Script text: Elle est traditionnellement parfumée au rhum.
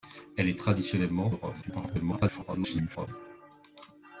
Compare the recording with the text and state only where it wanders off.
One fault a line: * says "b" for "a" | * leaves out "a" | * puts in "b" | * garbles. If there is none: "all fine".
* leaves out "parfumée"
* garbles